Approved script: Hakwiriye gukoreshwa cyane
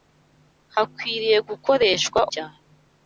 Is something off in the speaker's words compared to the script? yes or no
no